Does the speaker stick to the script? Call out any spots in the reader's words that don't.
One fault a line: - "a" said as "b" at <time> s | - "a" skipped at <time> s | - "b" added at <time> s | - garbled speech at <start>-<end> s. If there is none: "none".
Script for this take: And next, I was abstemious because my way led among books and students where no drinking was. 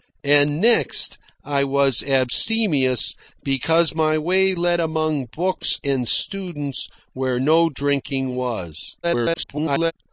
- garbled speech at 9.0-9.9 s